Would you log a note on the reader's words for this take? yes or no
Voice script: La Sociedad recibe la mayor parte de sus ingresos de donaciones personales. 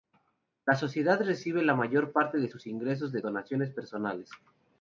no